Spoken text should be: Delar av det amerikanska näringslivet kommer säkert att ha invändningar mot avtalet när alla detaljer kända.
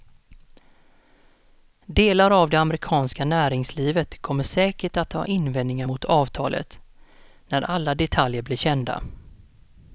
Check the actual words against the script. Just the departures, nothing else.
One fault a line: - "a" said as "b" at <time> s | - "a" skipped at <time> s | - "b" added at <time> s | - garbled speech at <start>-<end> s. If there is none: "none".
- "blir" added at 8.4 s